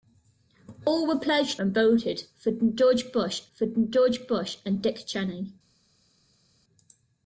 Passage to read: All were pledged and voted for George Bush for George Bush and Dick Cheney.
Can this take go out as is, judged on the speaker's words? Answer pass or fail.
pass